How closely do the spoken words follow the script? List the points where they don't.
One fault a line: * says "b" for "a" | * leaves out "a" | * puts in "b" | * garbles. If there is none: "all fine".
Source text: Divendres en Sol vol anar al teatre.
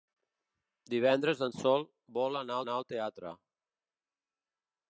* puts in "anar"